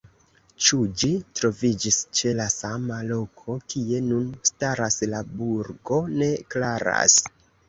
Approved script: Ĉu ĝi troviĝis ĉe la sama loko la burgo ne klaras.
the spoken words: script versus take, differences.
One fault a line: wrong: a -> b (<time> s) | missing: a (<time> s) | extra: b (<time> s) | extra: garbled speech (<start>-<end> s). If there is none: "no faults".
extra: kie nun staras (3.8 s)